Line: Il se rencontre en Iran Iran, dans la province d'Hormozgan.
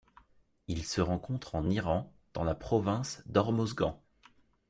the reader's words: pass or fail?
fail